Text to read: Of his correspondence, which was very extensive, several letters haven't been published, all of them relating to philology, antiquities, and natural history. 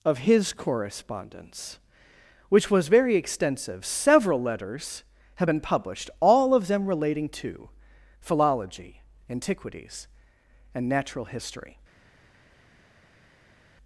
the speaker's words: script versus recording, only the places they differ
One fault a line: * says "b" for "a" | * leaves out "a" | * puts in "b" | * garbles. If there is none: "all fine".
* says "have" for "haven't"